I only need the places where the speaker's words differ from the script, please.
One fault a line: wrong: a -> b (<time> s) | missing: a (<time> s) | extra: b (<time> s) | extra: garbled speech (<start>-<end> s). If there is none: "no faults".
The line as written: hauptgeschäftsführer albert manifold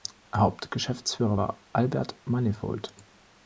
extra: war (1.4 s)